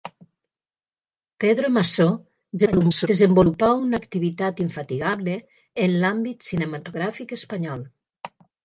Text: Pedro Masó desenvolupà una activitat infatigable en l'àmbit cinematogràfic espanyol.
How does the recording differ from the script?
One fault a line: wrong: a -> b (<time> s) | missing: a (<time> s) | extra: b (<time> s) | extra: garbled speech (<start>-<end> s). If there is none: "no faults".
extra: garbled speech (2.6-3.1 s)